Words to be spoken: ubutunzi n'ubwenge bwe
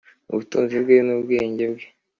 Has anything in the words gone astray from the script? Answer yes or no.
yes